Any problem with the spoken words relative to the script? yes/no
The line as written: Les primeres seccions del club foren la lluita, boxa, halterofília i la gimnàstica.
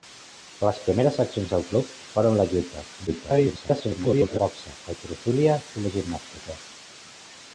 yes